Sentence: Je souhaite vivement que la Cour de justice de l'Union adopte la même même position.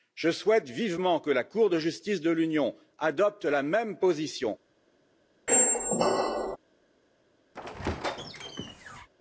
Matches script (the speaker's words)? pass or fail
fail